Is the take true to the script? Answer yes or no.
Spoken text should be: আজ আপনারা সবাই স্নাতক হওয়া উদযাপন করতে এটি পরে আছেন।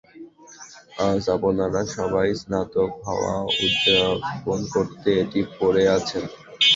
yes